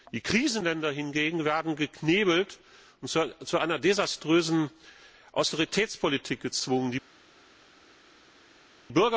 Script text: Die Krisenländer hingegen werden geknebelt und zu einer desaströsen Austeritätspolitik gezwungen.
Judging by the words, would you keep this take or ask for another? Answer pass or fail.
pass